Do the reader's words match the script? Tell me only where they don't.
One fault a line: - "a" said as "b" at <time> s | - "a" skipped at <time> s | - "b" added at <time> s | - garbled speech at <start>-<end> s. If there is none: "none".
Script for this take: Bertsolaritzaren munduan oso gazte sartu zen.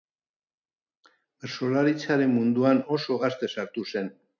none